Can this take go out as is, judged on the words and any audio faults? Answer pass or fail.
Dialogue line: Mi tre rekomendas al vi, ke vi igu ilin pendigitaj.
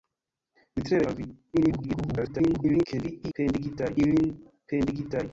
fail